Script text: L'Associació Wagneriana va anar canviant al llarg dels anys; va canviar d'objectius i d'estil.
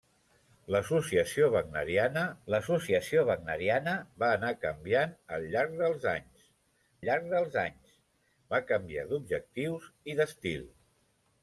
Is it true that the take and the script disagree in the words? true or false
true